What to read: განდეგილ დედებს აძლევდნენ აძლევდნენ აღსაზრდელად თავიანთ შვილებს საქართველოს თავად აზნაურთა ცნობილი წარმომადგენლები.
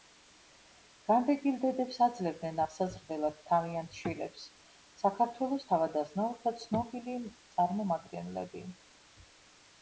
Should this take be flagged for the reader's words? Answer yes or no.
yes